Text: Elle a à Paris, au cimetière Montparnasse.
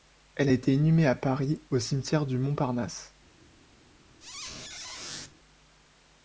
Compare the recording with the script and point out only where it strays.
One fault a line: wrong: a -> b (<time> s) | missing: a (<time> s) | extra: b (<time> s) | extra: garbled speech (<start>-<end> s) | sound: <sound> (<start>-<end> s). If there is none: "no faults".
extra: été inhumée (0.5 s)
extra: du (2.3 s)
sound: squeak (4.2-5.3 s)